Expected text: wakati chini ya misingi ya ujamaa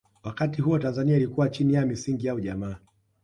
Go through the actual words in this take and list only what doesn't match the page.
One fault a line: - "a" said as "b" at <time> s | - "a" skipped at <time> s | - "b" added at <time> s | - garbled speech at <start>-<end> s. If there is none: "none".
- "huo tanzania ilikuwa" added at 0.6 s